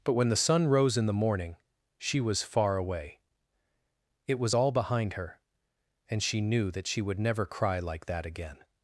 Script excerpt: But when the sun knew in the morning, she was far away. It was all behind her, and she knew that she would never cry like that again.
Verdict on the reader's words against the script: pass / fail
fail